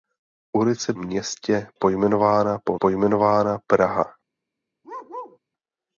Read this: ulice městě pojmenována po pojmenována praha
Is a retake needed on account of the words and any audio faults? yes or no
yes